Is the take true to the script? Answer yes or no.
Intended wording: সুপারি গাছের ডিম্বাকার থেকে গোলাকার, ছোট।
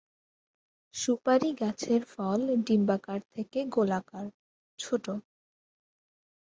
no